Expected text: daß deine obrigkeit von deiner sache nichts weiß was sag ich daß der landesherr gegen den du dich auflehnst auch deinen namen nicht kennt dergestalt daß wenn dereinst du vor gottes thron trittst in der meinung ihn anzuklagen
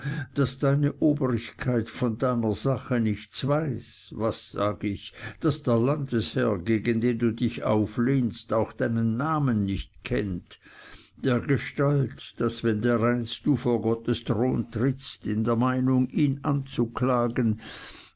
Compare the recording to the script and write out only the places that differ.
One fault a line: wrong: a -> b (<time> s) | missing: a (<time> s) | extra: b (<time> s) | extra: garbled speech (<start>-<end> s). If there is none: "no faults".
no faults